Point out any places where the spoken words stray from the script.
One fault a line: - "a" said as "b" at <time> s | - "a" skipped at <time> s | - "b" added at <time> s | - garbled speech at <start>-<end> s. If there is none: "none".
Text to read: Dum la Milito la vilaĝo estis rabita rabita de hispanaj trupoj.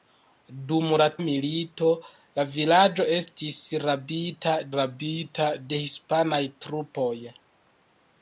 none